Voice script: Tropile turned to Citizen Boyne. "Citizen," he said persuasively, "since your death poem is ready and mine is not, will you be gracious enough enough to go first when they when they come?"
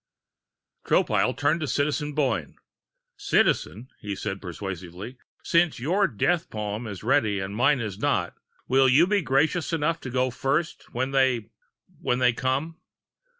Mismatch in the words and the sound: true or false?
true